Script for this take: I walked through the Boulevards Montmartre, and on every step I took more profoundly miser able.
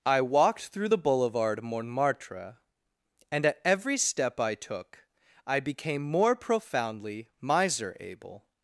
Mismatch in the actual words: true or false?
true